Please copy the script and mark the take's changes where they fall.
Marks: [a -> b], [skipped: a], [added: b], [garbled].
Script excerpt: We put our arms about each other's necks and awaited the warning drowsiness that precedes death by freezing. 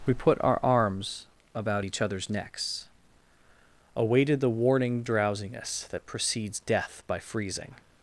We put our arms about each other's necks [skipped: and] awaited the warning drowsiness that precedes death by freezing.